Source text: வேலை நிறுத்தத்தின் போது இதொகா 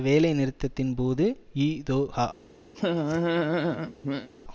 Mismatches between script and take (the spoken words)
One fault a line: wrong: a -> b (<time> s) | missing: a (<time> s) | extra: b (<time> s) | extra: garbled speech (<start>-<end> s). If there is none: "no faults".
no faults